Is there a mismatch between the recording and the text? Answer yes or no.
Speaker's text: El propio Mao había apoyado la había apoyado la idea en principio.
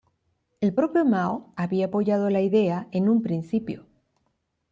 yes